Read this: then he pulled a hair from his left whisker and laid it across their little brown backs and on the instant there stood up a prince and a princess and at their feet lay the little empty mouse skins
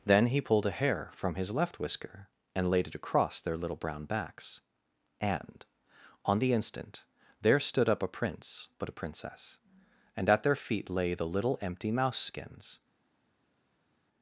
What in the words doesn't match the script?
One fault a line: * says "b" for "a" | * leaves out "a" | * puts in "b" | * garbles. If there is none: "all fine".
* says "but" for "and"